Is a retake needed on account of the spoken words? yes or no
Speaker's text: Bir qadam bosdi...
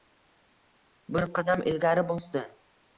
yes